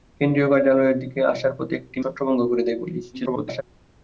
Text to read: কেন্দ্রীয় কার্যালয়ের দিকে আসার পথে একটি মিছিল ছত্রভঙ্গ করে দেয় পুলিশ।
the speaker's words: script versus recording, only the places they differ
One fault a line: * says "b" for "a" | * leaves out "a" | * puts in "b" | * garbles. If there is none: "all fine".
* leaves out "মিছিল"
* garbles